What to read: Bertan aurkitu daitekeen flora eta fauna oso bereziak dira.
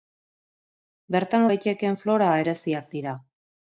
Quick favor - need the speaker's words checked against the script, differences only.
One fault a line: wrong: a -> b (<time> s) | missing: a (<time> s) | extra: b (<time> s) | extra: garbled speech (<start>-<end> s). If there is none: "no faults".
missing: aurkitu (1.4 s)
missing: eta fauna oso (2.3 s)